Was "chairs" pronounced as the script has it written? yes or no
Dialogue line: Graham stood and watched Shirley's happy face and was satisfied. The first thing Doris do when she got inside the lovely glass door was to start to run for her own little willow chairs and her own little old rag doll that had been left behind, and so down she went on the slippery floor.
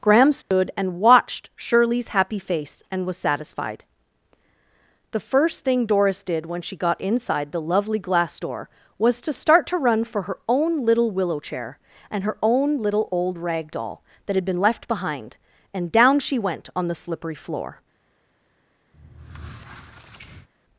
no